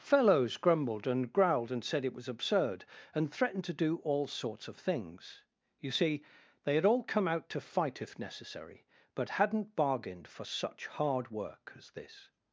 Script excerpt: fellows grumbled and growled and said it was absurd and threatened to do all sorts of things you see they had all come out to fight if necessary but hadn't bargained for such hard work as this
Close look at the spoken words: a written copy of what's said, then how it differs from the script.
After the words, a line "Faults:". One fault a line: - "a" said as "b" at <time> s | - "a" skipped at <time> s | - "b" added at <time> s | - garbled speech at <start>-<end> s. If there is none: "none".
fellows grumbled and growled and said it was absurd and threatened to do all sorts of things you see they had all come out to fight if necessary but hadn't bargained for such hard work as this
Faults:
none